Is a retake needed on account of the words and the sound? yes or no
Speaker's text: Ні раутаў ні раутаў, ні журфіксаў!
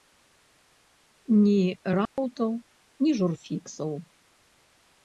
yes